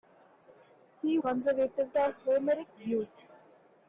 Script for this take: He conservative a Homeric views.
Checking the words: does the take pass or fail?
pass